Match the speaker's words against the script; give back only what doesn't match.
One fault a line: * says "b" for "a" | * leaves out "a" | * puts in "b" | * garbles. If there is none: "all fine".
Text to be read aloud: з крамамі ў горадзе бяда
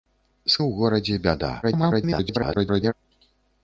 * leaves out "крамамі"
* garbles